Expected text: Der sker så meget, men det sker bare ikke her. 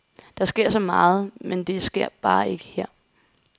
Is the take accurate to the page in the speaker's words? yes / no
yes